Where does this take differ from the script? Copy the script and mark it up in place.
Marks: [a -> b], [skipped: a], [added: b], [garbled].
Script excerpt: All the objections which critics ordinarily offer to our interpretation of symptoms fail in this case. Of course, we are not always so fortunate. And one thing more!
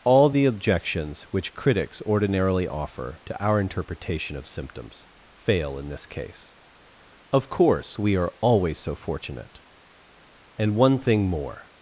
All the objections which critics ordinarily offer to our interpretation of symptoms fail in this case. Of course, we are [skipped: not] always so fortunate. And one thing more!